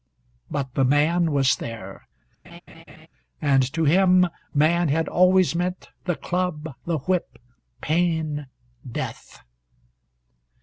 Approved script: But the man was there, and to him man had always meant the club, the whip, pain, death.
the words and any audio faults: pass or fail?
fail